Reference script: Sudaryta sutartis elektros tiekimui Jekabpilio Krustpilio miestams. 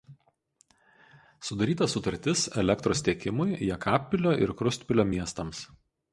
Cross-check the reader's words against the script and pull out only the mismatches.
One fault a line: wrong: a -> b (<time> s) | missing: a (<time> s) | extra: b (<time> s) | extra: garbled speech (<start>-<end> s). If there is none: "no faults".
extra: ir (4.5 s)